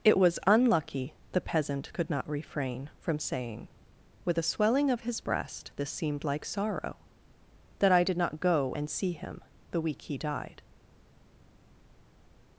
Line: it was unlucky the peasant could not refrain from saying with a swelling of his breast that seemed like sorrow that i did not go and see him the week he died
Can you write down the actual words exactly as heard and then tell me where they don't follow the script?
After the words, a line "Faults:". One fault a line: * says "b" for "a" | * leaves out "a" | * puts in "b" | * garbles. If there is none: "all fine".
it was unlucky the peasant could not refrain from saying with a swelling of his breast this seemed like sorrow that i did not go and see him the week he died
Faults:
* says "this" for "that"